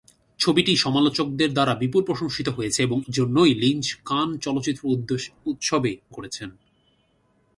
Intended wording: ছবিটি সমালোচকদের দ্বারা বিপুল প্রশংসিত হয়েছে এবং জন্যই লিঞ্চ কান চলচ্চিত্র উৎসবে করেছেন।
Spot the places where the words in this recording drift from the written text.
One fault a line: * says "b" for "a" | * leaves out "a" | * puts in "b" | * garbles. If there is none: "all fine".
all fine